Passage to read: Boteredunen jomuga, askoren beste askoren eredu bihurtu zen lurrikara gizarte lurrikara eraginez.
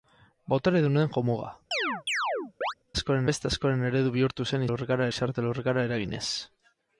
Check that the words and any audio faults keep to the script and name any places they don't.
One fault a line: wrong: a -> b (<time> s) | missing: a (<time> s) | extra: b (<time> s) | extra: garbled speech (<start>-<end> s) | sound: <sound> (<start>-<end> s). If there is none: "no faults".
sound: chirp (1.7-2.7 s)